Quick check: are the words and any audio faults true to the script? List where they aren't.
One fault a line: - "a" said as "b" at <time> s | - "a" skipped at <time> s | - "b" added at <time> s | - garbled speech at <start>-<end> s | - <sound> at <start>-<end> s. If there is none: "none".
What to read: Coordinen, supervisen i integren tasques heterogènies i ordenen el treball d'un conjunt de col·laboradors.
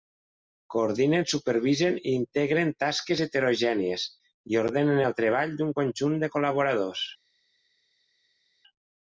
none